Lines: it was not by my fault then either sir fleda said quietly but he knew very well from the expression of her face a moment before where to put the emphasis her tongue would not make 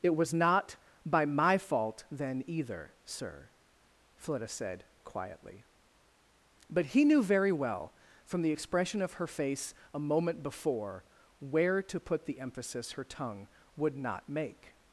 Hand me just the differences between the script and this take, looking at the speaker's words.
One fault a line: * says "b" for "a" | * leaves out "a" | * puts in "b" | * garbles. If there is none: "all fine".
all fine